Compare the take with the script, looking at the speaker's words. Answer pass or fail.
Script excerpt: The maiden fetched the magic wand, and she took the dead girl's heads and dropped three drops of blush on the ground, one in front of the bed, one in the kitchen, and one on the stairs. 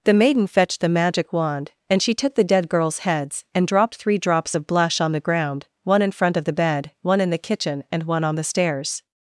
pass